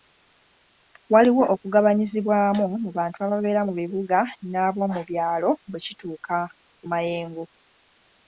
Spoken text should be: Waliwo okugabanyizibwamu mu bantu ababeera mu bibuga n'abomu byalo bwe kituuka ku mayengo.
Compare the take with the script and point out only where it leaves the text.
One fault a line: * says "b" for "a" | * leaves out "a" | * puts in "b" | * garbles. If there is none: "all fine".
all fine